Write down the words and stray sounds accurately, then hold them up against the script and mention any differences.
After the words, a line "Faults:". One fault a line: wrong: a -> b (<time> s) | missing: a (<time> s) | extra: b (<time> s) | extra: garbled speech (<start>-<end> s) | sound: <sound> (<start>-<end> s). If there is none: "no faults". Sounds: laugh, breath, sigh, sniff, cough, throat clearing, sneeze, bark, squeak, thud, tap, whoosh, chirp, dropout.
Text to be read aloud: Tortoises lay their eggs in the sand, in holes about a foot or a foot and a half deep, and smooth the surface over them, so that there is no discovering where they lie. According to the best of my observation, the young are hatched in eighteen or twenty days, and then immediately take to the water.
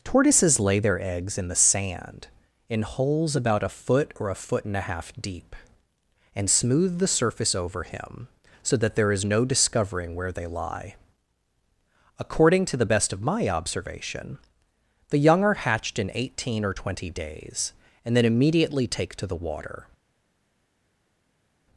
Tortoises lay their eggs in the sand, in holes about a foot or a foot and a half deep, and smooth the surface over him, so that there is no discovering where they lie. According to the best of my observation, the young are hatched in eighteen or twenty days, and then immediately take to the water.
Faults:
wrong: them -> him (7.8 s)